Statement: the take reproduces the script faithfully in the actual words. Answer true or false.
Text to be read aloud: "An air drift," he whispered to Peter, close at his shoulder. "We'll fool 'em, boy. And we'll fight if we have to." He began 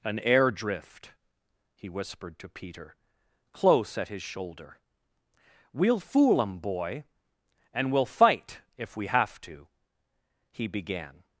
true